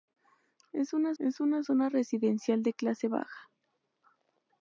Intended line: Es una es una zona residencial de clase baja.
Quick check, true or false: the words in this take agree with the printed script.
true